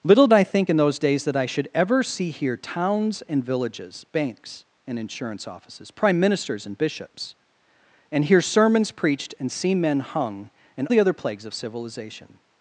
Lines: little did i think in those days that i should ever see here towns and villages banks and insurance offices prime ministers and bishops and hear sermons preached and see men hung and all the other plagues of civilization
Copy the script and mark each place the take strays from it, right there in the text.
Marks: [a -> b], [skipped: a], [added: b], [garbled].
little [skipped: did] i think in those days that i should ever see here towns and villages banks and insurance offices prime ministers and bishops and hear sermons preached and see men hung and [skipped: all] the other plagues of civilization